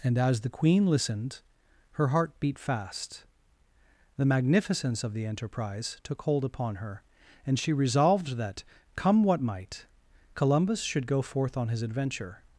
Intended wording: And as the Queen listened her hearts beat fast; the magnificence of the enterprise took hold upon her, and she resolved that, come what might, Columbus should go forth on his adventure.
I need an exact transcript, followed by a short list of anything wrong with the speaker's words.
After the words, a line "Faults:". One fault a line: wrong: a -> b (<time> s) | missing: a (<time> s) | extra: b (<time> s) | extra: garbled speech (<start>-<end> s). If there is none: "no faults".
And as the Queen listened her heart beat fast; the magnificence of the enterprise took hold upon her, and she resolved that, come what might, Columbus should go forth on his adventure.
Faults:
wrong: hearts -> heart (2.1 s)